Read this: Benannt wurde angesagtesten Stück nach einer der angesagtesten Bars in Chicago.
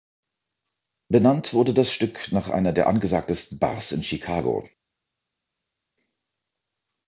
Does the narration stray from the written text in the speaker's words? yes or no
yes